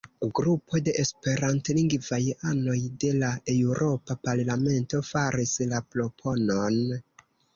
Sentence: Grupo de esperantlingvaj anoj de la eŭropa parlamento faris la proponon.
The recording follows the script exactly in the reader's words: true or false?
true